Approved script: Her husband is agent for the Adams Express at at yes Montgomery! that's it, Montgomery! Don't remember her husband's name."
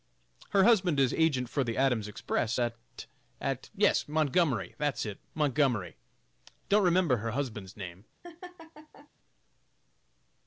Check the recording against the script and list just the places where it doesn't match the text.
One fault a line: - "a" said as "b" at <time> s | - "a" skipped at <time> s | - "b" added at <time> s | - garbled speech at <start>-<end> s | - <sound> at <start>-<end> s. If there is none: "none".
- laugh at 8.2-9.1 s